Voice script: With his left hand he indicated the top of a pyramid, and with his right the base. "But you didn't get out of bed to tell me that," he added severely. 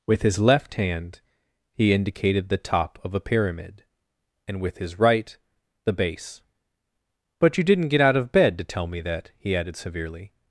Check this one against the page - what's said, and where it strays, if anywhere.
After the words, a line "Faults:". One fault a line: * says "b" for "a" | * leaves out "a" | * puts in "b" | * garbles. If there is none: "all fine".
With his left hand he indicated the top of a pyramid, and with his right the base. "But you didn't get out of bed to tell me that," he added severely.
Faults:
all fine